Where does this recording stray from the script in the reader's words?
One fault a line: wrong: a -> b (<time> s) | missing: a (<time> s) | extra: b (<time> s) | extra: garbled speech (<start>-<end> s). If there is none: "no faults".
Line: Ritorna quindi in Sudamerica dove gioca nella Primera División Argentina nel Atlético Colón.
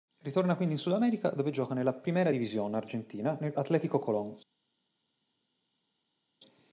no faults